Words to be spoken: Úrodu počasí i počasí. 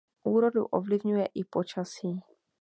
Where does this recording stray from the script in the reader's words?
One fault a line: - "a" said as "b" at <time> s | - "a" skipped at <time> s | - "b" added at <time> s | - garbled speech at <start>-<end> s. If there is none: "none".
- "počasí" said as "ovlivňuje" at 0.7 s